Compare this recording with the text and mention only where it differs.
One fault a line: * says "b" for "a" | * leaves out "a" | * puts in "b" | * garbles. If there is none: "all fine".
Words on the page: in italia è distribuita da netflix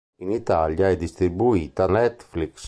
* leaves out "da"